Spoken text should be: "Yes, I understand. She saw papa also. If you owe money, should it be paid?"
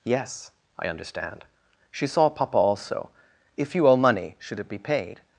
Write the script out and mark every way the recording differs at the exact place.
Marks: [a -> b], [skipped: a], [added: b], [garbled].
"Yes, I understand. She saw papa also. If you owe money, should it be paid?"